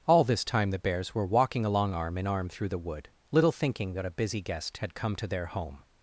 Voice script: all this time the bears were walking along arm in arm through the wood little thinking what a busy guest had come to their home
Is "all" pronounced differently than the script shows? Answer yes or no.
no